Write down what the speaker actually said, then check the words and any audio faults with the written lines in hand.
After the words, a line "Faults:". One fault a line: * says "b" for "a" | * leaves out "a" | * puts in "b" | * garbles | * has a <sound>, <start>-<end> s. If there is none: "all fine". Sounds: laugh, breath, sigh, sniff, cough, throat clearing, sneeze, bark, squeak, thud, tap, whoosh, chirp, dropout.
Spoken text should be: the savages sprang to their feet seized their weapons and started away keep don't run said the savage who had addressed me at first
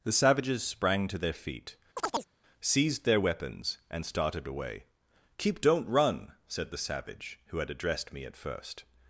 the savages sprang to their feet seized their weapons and started away keep don't run said the savage who had addressed me at first
Faults:
* has a chirp, 2.0-2.3 s